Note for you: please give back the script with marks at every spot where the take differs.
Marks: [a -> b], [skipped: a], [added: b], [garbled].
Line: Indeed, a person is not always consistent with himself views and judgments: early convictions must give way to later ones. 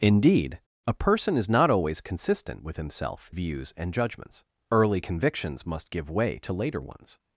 Indeed, a person is not always consistent with himself views and judgments: early convictions must give way to later ones.